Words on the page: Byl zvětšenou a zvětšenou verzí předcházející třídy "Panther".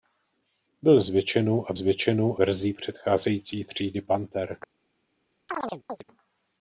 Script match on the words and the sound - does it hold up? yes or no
no